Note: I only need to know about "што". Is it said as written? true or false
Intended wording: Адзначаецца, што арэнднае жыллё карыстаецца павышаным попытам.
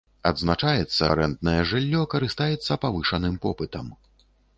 false